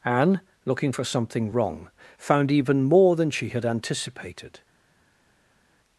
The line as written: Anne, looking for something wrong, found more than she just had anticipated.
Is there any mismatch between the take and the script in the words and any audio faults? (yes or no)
yes